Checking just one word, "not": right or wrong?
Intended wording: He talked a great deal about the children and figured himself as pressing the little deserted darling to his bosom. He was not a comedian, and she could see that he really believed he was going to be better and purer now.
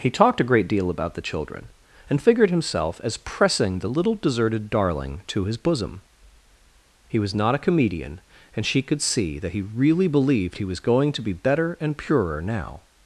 right